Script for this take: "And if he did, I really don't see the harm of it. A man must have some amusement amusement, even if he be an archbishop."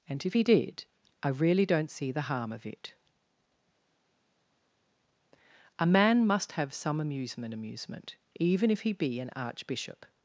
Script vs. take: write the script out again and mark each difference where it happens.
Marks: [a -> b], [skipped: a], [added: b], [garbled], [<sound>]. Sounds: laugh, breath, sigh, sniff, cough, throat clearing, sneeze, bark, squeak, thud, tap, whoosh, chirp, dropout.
"And if he did, I really don't see the harm of it. A man must have some amusement amusement, even if he be an archbishop."